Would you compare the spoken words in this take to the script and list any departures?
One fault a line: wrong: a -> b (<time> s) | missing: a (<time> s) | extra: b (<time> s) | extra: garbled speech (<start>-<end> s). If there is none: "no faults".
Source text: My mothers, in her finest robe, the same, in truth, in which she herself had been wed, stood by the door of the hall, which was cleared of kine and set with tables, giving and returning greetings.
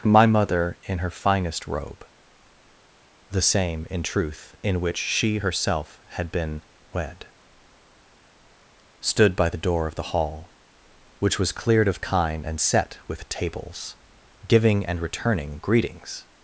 wrong: mothers -> mother (0.2 s)